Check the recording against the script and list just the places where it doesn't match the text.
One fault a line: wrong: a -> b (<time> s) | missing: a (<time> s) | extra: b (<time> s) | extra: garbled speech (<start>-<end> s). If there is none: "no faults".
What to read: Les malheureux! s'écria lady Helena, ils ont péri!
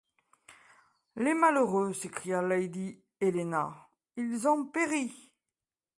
no faults